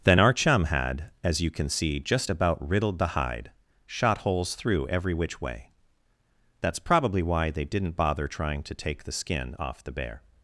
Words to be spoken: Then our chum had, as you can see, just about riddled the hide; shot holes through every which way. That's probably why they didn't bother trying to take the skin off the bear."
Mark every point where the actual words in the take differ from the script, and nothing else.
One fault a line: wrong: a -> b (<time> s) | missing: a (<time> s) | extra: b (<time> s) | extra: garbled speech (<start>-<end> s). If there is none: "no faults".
no faults